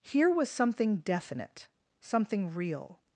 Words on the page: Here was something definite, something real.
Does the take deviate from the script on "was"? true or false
false